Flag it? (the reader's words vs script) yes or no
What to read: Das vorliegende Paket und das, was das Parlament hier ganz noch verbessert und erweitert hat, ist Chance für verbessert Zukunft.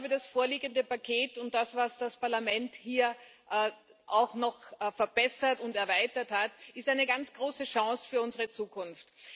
yes